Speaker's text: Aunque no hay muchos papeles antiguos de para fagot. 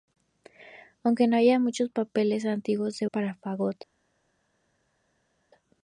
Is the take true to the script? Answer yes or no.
yes